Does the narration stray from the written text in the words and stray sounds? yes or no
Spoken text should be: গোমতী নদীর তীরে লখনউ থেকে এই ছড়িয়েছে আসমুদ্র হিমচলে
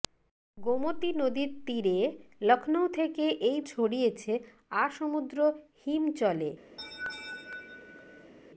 yes